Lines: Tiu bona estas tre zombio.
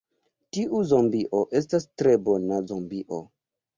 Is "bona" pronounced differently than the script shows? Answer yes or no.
yes